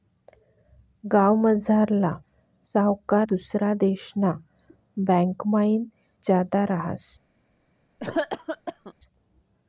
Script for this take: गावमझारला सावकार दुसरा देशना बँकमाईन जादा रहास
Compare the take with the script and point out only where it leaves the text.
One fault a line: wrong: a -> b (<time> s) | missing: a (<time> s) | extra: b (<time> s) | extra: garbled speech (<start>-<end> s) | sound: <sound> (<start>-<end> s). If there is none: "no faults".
sound: cough (8.0-8.9 s)